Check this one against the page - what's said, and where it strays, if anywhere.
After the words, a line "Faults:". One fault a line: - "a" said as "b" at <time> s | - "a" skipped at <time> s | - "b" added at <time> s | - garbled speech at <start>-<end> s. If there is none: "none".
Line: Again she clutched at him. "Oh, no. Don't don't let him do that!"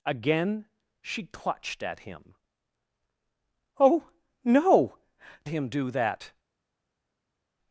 Again she clutched at him. "Oh, no. Him do that!"
Faults:
- "Don't don't let" skipped at 5.0 s